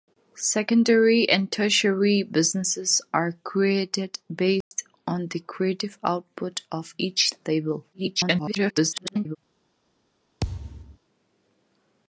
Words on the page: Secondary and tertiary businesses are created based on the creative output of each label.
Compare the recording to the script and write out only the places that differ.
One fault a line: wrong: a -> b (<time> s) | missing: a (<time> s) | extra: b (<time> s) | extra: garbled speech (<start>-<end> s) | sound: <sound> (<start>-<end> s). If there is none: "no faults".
sound: dropout (4.6-4.7 s)
extra: garbled speech (7.9-9.4 s)
sound: thud (10.4-11.0 s)